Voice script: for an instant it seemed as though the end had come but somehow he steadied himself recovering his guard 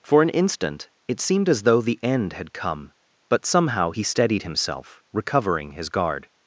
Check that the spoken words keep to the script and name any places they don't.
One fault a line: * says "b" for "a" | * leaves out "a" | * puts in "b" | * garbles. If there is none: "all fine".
all fine